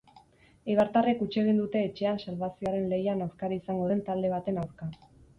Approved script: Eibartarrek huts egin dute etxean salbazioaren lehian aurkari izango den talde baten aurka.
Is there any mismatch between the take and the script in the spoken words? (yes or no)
no